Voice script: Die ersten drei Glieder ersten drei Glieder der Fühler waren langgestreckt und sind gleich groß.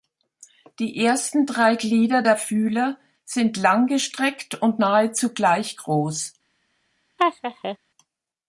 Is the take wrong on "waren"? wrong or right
wrong